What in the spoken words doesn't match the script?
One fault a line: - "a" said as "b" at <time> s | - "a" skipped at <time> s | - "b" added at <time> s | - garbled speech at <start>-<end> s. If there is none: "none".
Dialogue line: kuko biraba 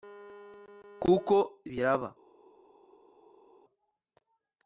none